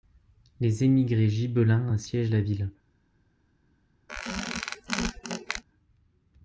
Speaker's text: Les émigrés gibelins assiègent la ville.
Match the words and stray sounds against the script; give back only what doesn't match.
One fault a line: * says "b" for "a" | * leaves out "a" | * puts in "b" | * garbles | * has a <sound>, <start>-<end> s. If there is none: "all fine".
* has a squeak, 4.1-5.6 s